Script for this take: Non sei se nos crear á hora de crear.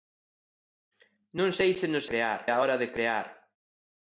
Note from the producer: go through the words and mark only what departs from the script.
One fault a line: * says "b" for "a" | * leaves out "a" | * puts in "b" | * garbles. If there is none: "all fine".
all fine